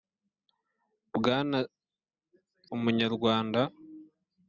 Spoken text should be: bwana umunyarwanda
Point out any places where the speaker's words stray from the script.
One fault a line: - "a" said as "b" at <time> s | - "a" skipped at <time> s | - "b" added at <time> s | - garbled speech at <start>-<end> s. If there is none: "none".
none